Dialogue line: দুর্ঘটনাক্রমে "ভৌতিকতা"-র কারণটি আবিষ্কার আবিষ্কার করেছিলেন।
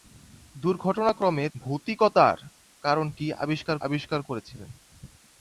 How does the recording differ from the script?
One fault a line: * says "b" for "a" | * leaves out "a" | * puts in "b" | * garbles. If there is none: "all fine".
all fine